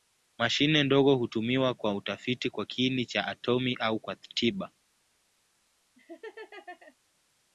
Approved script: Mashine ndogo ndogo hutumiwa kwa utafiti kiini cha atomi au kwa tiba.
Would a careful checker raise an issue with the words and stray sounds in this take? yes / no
yes